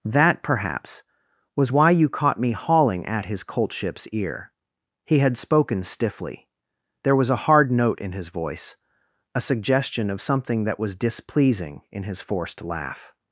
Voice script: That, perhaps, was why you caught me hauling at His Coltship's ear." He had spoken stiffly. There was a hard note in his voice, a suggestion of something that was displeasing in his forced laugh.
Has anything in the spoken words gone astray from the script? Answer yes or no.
no